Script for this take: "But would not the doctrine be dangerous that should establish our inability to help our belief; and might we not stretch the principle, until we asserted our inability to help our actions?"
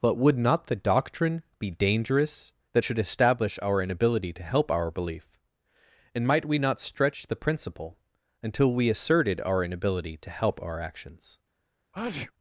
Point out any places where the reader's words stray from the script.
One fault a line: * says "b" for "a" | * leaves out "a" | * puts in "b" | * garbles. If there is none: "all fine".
all fine